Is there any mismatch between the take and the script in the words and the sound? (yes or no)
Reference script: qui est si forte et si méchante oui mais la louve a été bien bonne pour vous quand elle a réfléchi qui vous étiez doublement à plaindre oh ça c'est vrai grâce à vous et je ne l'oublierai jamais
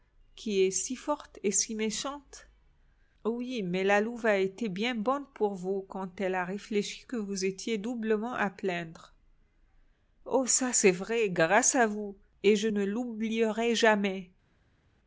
yes